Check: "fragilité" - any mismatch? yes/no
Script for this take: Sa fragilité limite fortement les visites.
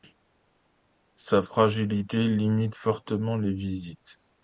no